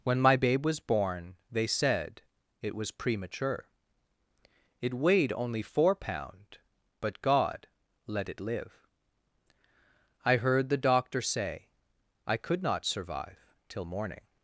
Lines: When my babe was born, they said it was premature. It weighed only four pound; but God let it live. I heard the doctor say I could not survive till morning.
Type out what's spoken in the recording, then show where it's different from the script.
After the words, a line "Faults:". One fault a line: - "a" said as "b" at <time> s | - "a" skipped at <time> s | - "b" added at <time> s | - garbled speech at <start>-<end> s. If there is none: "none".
When my babe was born, they said it was premature. It weighed only four pound; but God let it live. I heard the doctor say I could not survive till morning.
Faults:
none